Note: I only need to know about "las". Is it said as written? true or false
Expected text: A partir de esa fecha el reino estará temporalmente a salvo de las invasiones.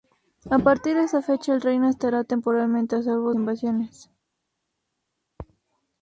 false